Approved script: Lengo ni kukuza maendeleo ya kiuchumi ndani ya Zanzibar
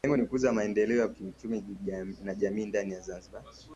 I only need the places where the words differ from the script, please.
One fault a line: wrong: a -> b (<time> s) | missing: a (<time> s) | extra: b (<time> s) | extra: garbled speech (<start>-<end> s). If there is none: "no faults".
extra: na kijamii (2.2 s)